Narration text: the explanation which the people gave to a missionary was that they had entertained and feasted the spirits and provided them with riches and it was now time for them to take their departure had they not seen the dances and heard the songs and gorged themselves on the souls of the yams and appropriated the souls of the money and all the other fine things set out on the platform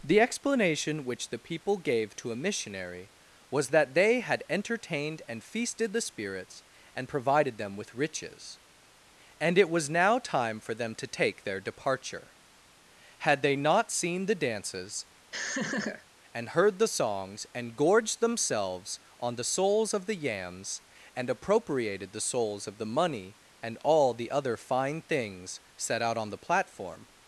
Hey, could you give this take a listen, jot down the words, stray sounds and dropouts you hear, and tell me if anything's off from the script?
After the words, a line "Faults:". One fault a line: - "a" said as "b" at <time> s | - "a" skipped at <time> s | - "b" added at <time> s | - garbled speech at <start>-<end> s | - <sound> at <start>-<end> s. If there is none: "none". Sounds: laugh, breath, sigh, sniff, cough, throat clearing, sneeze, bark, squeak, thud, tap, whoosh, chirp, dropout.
the explanation which the people gave to a missionary was that they had entertained and feasted the spirits and provided them with riches and it was now time for them to take their departure had they not seen the dances and heard the songs and gorged themselves on the souls of the yams and appropriated the souls of the money and all the other fine things set out on the platform
Faults:
- laugh at 15.3-16.1 s